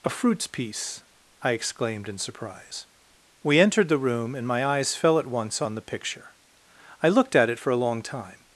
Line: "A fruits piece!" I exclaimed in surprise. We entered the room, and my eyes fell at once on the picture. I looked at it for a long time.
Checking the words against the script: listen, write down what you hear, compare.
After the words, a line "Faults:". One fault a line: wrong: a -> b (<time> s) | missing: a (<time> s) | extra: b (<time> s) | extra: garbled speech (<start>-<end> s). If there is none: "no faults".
"A fruits piece!" I exclaimed in surprise. We entered the room, and my eyes fell at once on the picture. I looked at it for a long time.
Faults:
no faults